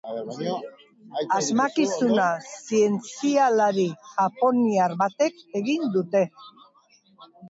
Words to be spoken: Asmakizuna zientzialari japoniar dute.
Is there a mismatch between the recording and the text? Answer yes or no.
yes